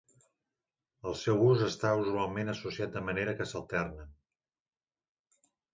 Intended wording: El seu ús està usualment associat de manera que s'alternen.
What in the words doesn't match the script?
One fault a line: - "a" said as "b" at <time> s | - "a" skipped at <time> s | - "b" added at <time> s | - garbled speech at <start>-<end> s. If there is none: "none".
none